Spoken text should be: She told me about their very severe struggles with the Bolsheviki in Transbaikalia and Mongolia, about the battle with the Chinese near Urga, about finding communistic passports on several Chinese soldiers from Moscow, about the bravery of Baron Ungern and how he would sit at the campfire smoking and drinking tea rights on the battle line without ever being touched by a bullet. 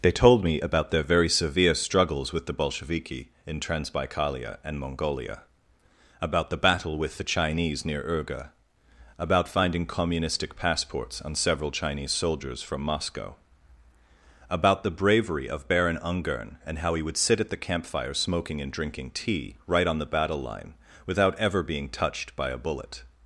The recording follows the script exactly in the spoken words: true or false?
false